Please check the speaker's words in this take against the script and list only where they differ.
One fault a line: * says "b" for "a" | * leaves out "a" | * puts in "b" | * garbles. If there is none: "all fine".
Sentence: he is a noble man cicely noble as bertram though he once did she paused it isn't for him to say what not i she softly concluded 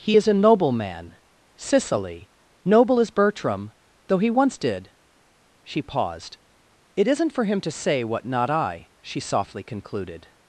all fine